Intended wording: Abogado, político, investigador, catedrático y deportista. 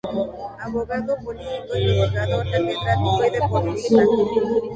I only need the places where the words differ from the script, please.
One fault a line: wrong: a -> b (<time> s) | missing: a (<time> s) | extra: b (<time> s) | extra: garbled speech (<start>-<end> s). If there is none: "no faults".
no faults